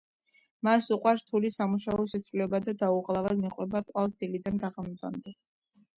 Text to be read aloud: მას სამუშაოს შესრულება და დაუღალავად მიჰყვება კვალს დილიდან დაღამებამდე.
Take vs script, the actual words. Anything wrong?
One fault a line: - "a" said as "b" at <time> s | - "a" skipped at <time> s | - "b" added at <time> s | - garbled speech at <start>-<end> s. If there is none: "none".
- "უყვარს რთული" added at 0.9 s